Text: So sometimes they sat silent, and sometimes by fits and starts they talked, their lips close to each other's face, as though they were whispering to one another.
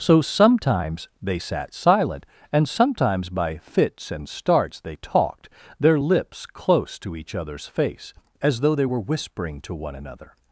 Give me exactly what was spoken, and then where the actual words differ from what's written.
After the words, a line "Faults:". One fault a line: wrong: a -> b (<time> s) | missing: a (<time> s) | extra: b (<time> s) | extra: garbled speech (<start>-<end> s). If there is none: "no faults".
So sometimes they sat silent, and sometimes by fits and starts they talked, their lips close to each other's face, as though they were whispering to one another.
Faults:
no faults